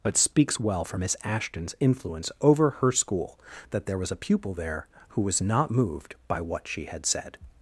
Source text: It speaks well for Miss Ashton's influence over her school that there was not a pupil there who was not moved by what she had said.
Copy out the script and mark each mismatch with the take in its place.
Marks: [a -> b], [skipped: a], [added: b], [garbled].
It speaks well for Miss Ashton's influence over her school that there was [skipped: not] a pupil there who was not moved by what she had said.